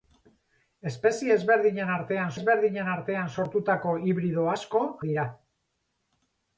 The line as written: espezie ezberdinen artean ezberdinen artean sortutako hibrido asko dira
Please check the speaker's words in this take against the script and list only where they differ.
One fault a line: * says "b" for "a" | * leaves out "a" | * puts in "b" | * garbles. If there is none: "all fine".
all fine